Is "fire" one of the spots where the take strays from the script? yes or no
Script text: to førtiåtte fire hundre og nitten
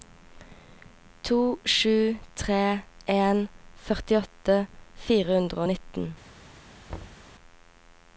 no